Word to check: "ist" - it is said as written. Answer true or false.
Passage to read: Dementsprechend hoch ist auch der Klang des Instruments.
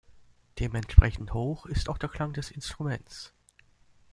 true